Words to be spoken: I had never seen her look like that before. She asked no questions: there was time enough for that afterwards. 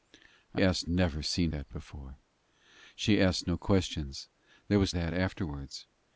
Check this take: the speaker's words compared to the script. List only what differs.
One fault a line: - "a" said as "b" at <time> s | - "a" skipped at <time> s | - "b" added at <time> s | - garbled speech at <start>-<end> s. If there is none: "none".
- "had" said as "asked" at 0.6 s
- "her look like" skipped at 1.5 s
- "time enough for" skipped at 4.9 s